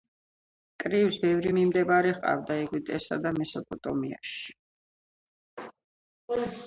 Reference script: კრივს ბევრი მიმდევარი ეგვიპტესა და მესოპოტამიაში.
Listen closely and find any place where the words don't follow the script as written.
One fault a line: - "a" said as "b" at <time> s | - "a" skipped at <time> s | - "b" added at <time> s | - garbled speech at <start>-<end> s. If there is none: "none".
- "ჰყავდა" added at 2.2 s